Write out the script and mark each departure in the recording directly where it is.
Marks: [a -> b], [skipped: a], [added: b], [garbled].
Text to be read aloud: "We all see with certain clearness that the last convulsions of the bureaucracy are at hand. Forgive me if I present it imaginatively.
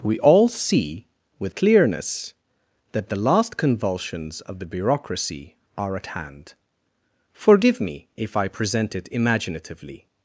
"We all see with [skipped: certain] clearness that the last convulsions of the bureaucracy are at hand. Forgive me if I present it imaginatively.